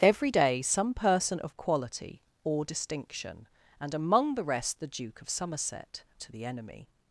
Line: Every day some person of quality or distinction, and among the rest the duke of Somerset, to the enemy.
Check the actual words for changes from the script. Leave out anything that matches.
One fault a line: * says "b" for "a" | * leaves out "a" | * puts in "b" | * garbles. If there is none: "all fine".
all fine